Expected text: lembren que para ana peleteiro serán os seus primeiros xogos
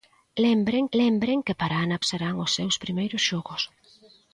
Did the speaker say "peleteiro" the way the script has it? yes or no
no